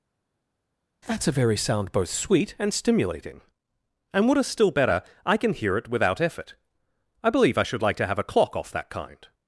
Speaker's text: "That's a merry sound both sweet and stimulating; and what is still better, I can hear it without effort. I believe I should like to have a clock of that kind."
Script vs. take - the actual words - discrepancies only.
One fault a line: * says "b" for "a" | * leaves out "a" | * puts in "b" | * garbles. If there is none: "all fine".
* says "very" for "merry"
* says "off" for "of"